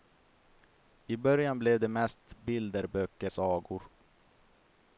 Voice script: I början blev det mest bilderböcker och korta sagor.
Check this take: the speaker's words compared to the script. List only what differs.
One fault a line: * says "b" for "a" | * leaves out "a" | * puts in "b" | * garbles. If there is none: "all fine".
* leaves out "och korta"